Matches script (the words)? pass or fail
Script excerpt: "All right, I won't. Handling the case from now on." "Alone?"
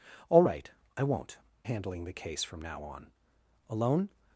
pass